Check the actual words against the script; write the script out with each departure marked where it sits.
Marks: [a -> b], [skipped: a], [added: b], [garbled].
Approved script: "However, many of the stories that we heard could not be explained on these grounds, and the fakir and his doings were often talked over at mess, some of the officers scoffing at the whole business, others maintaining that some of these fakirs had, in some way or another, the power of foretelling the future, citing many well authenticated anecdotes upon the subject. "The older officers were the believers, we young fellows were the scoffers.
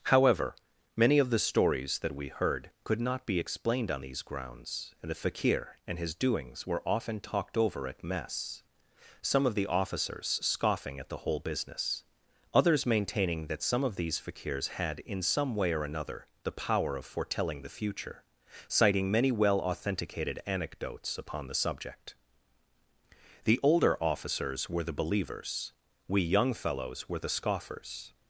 "However, many of the stories that we heard could not be explained on these grounds, and the fakir and his doings were often talked over at mess, some of the officers scoffing at the whole business, others maintaining that some of these fakirs had, in some way or another, the power of foretelling the future, citing many well authenticated anecdotes upon the subject. "The older officers were the believers, we young fellows were the scoffers.